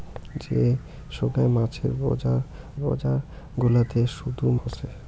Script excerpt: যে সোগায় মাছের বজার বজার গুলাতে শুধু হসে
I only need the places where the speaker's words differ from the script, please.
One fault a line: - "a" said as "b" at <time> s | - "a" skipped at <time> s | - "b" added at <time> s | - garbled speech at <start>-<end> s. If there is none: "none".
none